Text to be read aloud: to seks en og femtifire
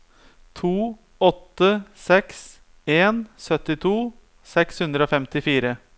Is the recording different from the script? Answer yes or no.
yes